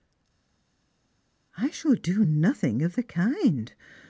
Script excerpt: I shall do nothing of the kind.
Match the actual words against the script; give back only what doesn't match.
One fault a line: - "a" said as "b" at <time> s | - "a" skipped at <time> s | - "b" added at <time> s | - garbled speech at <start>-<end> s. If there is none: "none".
none